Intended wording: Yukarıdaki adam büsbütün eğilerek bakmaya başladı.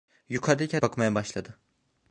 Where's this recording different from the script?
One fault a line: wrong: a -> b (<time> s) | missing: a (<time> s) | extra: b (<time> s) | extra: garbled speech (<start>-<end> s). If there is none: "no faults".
missing: adam büsbütün eğilerek (0.8 s)